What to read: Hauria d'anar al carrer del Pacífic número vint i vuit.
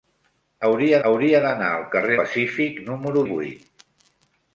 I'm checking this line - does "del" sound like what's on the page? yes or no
no